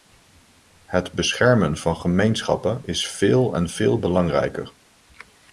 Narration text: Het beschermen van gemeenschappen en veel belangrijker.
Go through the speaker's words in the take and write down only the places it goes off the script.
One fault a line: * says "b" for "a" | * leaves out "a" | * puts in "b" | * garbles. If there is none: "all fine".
* puts in "is veel"